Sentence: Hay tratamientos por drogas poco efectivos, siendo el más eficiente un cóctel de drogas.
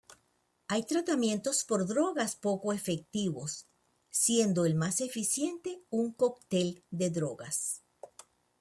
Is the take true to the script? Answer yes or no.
yes